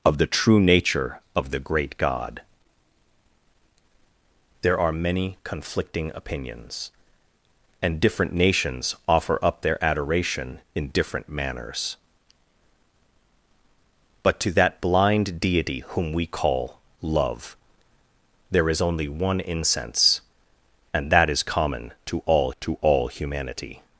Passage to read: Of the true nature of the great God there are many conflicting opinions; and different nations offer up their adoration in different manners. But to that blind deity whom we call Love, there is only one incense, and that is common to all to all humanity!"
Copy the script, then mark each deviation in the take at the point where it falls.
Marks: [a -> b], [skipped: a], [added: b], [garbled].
Of the true nature of the great God there are many conflicting opinions; and different nations offer up their adoration in different manners. But to that blind deity whom we call Love, there is only one incense, and that is common to all to all humanity!"